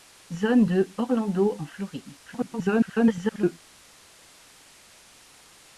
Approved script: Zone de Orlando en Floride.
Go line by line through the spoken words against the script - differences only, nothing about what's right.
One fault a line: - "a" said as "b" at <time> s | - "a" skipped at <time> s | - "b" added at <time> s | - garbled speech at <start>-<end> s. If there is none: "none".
- garbled speech at 2.2-3.6 s